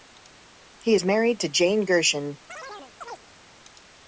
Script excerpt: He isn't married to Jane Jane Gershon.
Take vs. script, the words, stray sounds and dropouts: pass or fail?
fail